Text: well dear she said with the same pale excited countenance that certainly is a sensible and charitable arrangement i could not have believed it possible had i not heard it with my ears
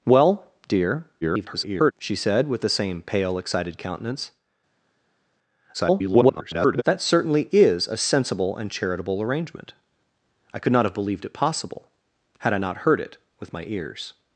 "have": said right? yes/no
yes